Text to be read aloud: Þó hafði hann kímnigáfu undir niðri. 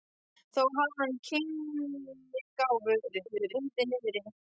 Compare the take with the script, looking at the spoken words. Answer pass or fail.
fail